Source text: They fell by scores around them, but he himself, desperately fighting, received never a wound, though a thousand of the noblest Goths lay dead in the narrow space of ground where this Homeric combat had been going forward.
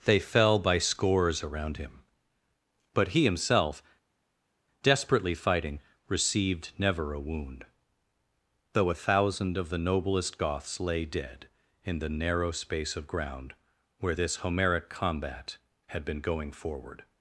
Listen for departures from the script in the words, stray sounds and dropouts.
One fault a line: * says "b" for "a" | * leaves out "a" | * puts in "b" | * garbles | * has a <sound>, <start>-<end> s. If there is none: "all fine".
* says "him" for "them"